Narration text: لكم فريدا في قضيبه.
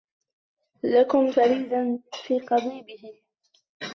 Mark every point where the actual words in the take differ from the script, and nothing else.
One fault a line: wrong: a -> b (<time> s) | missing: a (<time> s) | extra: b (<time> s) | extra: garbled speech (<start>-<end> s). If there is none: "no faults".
no faults